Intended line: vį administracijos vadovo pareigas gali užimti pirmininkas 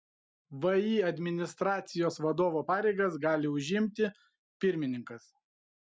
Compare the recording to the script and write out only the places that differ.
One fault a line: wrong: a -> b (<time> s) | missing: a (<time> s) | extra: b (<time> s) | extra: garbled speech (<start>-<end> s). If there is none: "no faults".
no faults